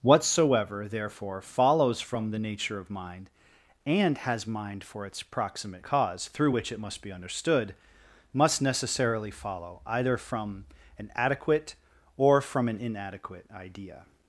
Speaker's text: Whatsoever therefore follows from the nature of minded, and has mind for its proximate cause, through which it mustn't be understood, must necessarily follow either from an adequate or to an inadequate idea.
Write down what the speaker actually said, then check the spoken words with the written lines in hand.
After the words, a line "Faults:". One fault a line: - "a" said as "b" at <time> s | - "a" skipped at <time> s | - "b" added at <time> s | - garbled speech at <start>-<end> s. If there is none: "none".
Whatsoever therefore follows from the nature of mind, and has mind for its proximate cause, through which it must be understood, must necessarily follow either from an adequate or from an inadequate idea.
Faults:
- "minded" said as "mind" at 2.9 s
- "mustn't" said as "must" at 6.8 s
- "to" said as "from" at 12.4 s